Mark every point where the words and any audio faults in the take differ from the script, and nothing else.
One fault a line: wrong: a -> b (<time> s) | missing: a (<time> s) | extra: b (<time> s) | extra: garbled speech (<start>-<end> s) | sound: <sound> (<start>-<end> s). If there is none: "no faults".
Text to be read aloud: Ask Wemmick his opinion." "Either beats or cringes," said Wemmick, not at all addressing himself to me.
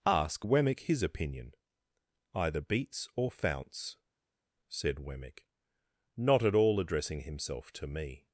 wrong: cringes -> founts (3.3 s)